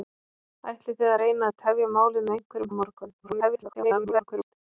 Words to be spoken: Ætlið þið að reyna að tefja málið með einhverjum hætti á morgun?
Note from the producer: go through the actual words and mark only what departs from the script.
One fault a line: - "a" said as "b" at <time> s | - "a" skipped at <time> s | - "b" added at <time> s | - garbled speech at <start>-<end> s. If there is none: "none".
- "hætti" skipped at 2.7 s
- garbled speech at 3.2-4.5 s